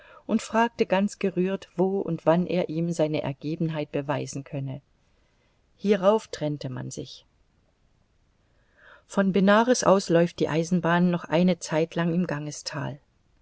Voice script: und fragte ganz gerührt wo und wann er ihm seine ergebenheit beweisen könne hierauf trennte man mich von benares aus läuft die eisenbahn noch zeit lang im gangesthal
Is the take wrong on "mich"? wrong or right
wrong